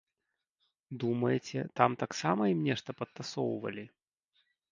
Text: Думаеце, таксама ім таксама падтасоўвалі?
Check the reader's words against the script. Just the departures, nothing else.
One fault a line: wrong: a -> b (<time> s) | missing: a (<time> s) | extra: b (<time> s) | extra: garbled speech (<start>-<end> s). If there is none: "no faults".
extra: там (1.8 s)
wrong: таксама -> нешта (2.7 s)